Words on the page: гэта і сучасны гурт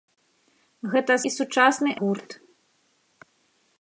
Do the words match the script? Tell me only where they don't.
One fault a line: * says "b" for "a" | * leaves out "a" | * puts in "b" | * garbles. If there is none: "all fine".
all fine